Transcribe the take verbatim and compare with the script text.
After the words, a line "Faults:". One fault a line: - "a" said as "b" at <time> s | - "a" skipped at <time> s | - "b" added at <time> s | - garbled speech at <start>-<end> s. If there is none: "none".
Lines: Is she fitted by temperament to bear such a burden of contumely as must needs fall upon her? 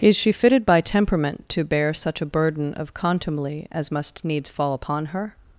Is she fitted by temperament to bear such a burden of contumely as must needs fall upon her?
Faults:
none